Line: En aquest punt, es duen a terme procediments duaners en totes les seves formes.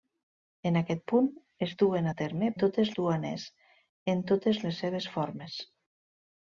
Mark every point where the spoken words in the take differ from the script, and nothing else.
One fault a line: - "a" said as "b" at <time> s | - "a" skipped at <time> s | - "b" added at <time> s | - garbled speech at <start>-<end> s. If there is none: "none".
- "procediments" said as "totes" at 2.6 s